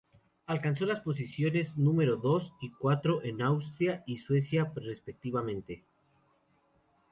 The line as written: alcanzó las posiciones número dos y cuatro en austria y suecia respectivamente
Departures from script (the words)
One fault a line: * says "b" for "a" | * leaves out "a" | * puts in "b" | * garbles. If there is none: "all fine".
all fine